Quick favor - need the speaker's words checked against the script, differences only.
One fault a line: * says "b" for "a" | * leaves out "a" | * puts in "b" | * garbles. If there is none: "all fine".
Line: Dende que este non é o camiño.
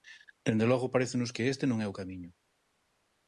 * puts in "logo parécenos"